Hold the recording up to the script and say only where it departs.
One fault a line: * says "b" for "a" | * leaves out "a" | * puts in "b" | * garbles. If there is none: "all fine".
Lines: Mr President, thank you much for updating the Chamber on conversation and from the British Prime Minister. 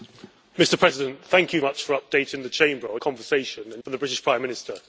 all fine